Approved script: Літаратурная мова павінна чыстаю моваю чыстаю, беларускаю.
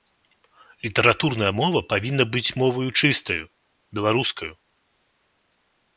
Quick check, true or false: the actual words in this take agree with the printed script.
false